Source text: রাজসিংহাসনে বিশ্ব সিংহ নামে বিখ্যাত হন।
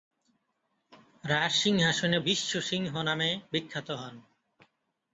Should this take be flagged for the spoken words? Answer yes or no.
no